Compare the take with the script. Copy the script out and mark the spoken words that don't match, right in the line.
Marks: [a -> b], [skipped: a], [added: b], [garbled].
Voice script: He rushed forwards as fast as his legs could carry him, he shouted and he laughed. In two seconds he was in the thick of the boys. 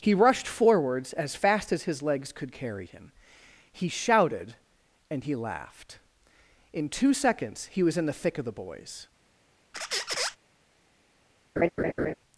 He rushed forwards as fast as his legs could carry him, he shouted and he laughed. In two seconds he was in the thick of the boys.